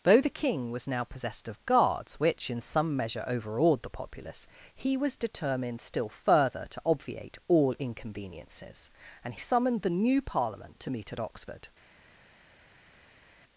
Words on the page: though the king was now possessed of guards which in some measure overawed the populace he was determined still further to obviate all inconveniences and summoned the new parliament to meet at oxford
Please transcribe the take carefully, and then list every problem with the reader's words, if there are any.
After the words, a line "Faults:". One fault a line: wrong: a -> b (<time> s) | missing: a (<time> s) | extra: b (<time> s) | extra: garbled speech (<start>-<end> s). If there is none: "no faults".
though the king was now possessed of guards which in some measure overawed the populace he was determined still further to obviate all inconveniences and summoned the new parliament to meet at oxford
Faults:
no faults